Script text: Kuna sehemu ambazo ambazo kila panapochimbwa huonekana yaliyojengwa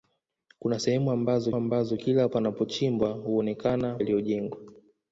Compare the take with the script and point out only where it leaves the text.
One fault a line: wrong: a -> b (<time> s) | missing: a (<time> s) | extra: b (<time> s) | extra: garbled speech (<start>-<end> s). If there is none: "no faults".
no faults